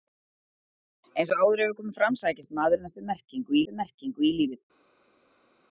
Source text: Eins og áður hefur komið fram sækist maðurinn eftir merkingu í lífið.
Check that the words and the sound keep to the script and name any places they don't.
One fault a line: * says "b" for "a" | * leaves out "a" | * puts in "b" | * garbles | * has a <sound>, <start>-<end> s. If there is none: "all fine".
* puts in "eftir merkingu"